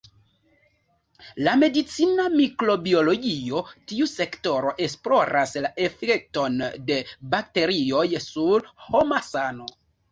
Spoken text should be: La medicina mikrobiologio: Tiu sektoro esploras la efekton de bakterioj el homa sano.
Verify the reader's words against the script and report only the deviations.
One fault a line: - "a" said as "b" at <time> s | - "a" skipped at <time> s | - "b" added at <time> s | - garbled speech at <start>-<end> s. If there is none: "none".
- "el" said as "sur" at 8.3 s